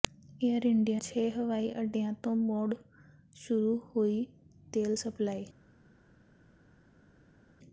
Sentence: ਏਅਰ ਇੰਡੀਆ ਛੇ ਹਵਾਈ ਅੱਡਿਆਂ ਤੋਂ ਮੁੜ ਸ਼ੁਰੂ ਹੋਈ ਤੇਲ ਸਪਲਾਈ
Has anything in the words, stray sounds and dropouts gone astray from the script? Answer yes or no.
no